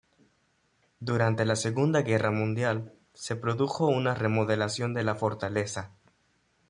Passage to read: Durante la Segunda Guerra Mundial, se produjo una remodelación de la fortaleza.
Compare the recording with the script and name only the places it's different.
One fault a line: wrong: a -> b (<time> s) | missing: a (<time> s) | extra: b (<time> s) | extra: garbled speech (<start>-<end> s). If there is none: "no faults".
no faults